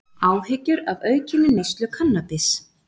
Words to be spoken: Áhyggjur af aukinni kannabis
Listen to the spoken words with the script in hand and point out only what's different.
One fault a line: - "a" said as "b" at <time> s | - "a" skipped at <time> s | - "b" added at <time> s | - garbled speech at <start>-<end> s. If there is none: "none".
- "neyslu" added at 1.6 s